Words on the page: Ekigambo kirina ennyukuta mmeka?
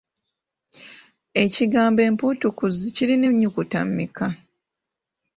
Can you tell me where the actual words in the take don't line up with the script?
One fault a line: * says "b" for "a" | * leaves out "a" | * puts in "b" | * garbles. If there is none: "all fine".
* puts in "empuutukuzi"